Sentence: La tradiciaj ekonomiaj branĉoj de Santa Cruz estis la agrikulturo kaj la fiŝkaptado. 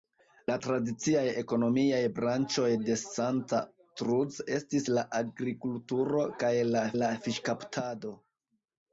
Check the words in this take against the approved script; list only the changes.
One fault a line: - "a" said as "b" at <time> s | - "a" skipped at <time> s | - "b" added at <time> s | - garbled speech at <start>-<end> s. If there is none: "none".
- "la" added at 7.0 s